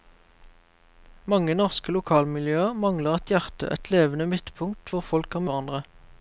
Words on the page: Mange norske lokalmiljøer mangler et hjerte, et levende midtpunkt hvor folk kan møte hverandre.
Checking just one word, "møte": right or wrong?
wrong